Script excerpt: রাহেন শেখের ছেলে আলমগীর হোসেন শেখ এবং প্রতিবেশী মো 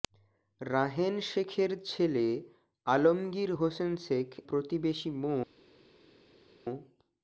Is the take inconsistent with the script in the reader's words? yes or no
yes